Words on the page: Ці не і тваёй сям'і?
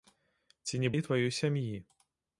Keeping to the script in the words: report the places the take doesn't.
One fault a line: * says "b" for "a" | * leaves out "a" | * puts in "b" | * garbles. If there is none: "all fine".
all fine